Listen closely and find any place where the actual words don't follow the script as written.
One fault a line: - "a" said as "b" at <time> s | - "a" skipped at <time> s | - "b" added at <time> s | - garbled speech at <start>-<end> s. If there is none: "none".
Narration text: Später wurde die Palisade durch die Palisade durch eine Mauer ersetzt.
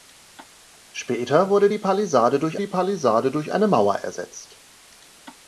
none